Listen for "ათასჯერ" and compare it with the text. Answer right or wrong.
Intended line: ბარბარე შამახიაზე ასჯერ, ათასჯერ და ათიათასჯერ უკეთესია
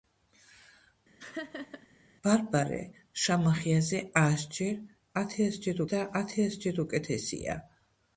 wrong